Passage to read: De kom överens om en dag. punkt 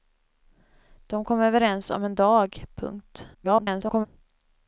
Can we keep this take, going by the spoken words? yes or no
no